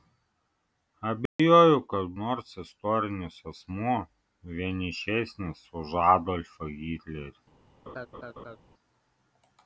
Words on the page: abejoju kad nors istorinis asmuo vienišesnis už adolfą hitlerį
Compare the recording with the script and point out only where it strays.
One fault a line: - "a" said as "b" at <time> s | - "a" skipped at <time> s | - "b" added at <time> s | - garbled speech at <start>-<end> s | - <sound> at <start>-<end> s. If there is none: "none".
- dropout at 1.3-1.4 s
- laugh at 7.9-8.6 s